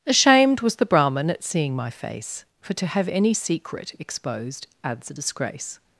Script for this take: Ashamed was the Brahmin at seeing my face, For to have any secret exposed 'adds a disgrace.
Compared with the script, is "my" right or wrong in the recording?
right